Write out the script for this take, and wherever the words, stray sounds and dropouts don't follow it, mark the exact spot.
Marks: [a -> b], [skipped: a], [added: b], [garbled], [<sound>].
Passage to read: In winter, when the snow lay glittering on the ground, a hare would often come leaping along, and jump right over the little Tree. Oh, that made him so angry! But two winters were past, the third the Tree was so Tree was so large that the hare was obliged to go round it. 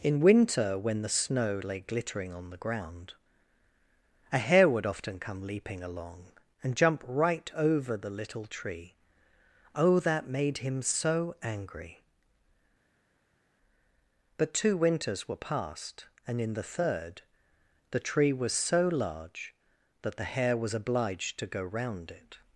In winter, when the snow lay glittering on the ground, a hare would often come leaping along, and jump right over the little Tree. Oh, that made him so angry! But two winters were past, [added: and in] the third the Tree was so [skipped: Tree was so] large that the hare was obliged to go round it.